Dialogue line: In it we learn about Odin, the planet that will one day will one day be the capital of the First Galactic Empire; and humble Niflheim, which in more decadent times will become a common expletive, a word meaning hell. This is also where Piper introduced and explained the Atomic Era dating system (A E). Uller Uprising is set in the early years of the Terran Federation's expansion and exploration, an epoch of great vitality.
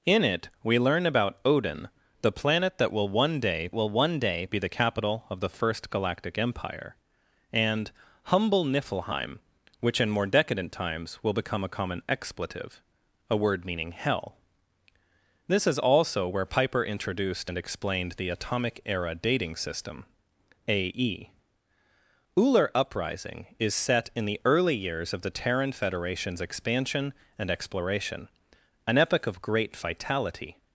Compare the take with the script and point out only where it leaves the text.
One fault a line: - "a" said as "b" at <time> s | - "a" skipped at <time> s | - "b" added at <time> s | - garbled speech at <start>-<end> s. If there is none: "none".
none